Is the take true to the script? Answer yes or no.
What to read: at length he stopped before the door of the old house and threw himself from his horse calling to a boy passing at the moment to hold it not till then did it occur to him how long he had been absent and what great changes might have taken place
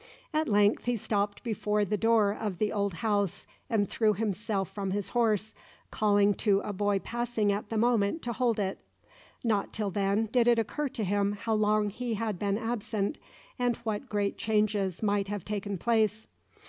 yes